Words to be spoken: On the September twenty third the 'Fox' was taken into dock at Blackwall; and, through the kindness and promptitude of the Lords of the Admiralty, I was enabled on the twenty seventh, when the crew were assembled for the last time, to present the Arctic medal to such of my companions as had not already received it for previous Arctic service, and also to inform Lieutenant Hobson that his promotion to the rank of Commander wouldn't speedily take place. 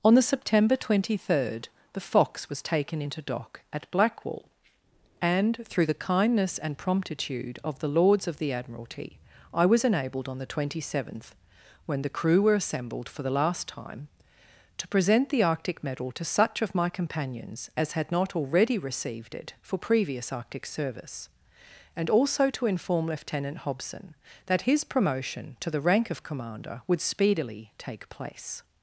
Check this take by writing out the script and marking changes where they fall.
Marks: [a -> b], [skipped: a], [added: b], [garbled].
On the September twenty third the 'Fox' was taken into dock at Blackwall; and, through the kindness and promptitude of the Lords of the Admiralty, I was enabled on the twenty seventh, when the crew were assembled for the last time, to present the Arctic medal to such of my companions as had not already received it for previous Arctic service, and also to inform Lieutenant Hobson that his promotion to the rank of Commander [wouldn't -> would] speedily take place.